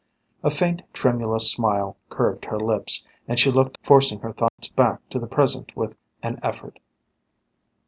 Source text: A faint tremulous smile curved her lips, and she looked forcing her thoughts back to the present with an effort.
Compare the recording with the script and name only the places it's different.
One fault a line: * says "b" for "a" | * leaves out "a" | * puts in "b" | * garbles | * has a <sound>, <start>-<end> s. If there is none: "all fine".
* has a dropout, 4.5-4.6 s